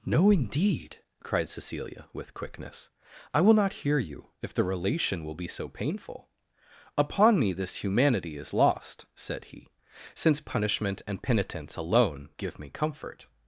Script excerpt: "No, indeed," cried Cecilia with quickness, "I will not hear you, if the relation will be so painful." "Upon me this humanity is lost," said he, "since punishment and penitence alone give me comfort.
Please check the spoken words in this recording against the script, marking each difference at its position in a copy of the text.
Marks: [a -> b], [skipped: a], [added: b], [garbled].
"No, indeed," cried Cecilia with quickness, "I will not hear you, if the relation will be so painful." "Upon me this humanity is lost," said he, "since punishment and penitence alone give me comfort.